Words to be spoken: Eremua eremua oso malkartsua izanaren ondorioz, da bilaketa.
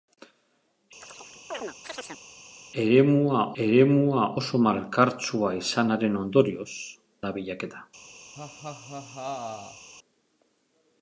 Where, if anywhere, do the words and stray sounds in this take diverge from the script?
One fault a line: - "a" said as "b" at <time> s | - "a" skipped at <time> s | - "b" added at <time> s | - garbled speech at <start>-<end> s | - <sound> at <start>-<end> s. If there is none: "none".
- chirp at 1.0-2.2 s
- laugh at 8.3-9.9 s